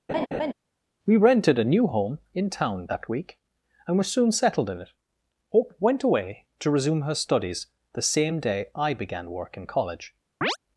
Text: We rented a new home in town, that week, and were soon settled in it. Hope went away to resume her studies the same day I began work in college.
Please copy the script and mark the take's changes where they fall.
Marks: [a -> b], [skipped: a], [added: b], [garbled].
We rented a new home in town, that week, and were soon settled in it. Hope went away to resume her studies the same day I began work in college.